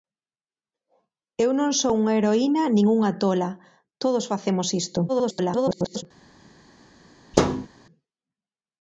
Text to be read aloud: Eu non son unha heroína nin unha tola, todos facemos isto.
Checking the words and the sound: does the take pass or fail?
fail